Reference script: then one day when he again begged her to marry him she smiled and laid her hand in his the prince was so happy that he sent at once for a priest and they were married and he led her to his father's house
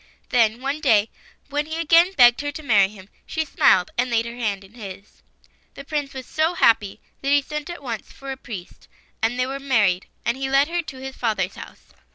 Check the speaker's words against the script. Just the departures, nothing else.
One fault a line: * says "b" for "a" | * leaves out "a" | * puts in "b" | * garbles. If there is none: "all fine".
all fine